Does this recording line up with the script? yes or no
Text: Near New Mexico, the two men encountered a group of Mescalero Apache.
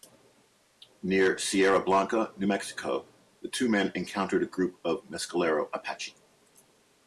no